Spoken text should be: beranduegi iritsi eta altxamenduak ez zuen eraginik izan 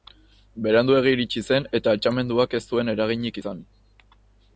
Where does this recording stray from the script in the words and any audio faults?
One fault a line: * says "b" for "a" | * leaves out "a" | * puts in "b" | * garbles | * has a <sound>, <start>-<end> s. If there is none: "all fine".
* puts in "zen"